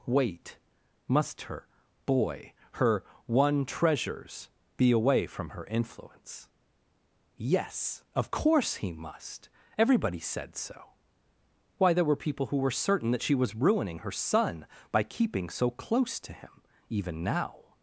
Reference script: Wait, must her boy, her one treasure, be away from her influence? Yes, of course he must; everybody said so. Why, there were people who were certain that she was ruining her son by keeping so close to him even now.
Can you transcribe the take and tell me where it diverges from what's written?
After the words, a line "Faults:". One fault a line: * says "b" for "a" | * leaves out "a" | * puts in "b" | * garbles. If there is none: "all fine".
Wait, must her boy, her one treasures, be away from her influence? Yes, of course he must; everybody said so. Why, there were people who were certain that she was ruining her son by keeping so close to him even now.
Faults:
* says "treasures" for "treasure"